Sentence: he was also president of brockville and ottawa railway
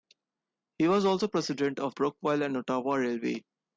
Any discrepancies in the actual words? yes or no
no